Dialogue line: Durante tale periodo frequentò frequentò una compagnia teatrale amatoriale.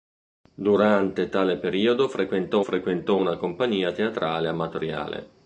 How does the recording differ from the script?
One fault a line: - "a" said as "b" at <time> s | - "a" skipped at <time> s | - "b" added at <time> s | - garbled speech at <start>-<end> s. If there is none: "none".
none